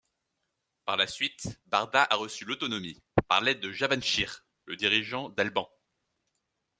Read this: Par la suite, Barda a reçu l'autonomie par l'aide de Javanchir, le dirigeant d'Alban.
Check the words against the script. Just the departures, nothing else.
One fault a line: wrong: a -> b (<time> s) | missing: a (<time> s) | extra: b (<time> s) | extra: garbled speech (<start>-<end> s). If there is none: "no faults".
no faults